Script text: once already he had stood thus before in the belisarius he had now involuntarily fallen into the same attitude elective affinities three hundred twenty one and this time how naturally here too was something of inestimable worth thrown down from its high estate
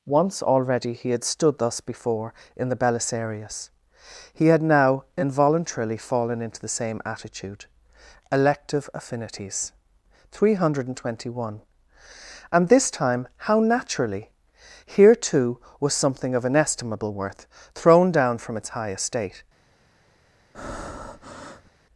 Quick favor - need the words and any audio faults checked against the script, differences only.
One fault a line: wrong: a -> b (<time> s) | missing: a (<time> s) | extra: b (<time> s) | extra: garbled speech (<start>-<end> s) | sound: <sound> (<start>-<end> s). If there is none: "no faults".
sound: breath (20.5-21.7 s)